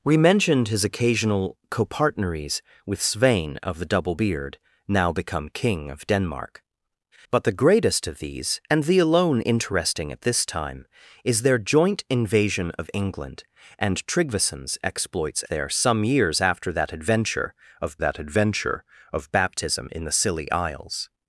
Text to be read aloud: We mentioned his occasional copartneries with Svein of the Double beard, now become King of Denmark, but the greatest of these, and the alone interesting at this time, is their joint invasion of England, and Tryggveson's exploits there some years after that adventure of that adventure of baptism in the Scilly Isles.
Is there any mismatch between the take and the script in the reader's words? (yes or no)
no